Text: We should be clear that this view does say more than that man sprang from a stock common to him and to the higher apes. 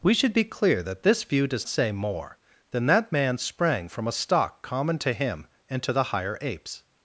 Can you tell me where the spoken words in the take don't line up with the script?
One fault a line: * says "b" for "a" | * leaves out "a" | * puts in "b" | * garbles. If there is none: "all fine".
all fine